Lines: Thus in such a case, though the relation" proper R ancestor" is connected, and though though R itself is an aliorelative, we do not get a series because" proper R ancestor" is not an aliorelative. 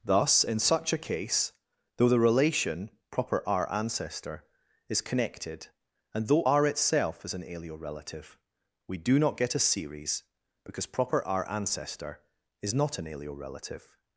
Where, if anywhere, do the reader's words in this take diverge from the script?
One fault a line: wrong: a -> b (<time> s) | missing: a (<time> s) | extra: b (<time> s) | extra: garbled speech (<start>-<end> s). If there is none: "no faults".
missing: though (6.4 s)